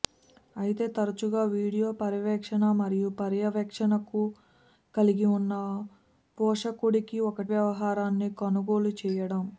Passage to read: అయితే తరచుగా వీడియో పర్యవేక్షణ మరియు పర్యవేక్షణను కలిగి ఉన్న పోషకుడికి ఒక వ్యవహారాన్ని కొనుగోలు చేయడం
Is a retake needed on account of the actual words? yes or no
no